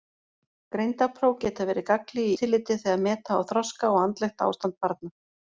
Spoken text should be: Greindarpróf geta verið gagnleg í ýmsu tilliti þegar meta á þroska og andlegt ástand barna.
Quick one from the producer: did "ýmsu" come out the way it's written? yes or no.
no